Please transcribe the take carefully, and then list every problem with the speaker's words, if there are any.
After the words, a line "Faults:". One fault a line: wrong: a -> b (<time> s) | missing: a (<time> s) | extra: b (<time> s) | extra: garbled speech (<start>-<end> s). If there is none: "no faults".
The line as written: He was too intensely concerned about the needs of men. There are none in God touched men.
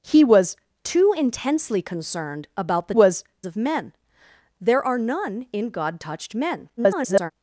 He was too intensely concerned about the was of men. There are none in God touched men. [garbled]
Faults:
wrong: needs -> was (2.9 s)
extra: garbled speech (6.8-7.3 s)